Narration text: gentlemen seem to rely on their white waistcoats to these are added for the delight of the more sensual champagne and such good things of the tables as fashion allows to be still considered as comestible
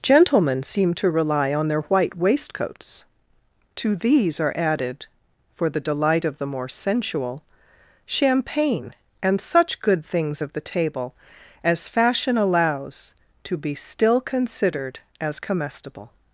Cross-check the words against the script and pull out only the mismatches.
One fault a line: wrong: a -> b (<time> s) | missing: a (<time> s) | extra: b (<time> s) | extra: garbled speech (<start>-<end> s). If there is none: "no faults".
wrong: tables -> table (10.6 s)